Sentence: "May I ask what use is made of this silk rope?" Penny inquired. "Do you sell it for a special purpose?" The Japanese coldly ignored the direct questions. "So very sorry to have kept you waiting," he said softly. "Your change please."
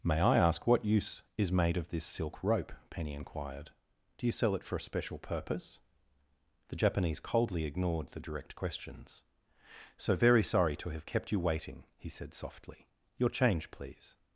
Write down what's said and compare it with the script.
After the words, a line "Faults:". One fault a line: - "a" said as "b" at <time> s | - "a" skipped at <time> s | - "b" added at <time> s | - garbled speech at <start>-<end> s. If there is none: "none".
"May I ask what use is made of this silk rope?" Penny inquired. "Do you sell it for a special purpose?" The Japanese coldly ignored the direct questions. "So very sorry to have kept you waiting," he said softly. "Your change please."
Faults:
none